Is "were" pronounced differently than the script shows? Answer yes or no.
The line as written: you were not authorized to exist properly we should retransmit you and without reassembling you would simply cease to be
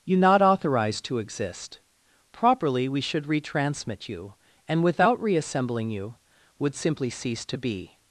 yes